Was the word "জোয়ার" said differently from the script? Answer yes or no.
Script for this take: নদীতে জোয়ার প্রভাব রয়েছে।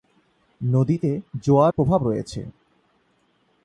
no